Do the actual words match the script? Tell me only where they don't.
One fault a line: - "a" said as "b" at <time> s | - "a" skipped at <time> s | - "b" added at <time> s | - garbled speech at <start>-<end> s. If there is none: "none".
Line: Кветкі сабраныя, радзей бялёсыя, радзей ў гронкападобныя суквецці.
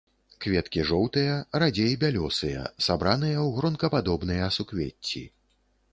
- "сабраныя" said as "жоўтыя" at 0.9 s
- "радзей" said as "сабраныя" at 2.9 s